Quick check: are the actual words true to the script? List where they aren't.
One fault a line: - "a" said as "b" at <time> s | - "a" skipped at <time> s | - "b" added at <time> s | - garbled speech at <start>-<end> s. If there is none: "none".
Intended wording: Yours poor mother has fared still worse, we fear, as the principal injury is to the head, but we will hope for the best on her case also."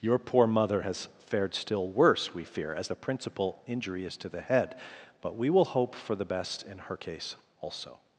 - "Yours" said as "Your" at 0.0 s
- "on" said as "in" at 6.6 s